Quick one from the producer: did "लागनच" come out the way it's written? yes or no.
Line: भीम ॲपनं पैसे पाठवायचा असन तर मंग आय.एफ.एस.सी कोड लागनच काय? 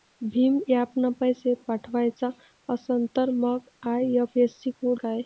no